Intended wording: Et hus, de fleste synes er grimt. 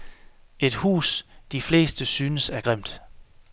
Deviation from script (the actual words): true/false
false